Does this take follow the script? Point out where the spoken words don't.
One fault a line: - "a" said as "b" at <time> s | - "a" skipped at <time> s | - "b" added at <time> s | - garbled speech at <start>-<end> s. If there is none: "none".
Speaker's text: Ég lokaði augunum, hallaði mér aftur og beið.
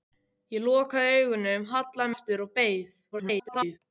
- "mér" skipped at 2.1 s
- garbled speech at 3.1-3.8 s